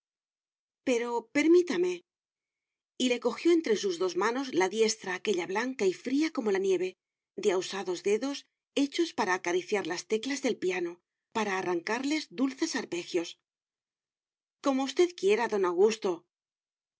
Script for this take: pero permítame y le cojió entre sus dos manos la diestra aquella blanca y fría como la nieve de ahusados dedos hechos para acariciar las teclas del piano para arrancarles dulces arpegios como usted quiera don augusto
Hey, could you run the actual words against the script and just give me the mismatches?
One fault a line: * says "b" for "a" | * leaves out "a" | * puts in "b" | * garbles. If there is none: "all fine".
all fine